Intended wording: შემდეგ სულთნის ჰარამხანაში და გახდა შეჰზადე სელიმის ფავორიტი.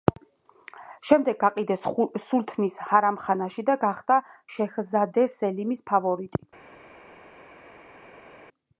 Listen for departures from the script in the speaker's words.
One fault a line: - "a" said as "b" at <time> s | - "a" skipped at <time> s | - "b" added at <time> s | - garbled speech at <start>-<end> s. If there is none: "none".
- "გაყიდეს" added at 1.4 s